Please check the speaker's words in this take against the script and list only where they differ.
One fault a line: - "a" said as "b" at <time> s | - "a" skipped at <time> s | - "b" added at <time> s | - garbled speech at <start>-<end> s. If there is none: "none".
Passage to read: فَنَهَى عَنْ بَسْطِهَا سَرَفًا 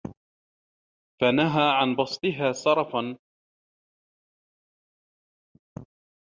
none